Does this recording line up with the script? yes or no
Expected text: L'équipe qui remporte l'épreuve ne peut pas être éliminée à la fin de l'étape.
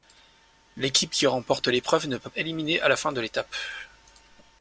no